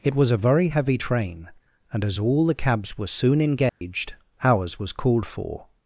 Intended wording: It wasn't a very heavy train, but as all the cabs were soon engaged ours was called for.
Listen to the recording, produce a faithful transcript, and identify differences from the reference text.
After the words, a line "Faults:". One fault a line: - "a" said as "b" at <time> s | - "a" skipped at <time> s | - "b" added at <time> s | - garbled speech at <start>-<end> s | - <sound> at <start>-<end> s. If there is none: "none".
It was a very heavy train, and as all the cabs were soon engaged ours was called for.
Faults:
- "wasn't" said as "was" at 0.1 s
- "but" said as "and" at 1.9 s
- dropout at 3.7-3.8 s